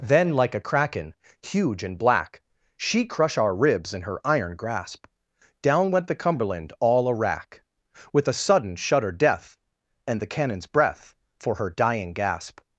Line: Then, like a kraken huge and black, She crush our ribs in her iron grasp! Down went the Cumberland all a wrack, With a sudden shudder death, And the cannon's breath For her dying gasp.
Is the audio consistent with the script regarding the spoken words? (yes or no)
yes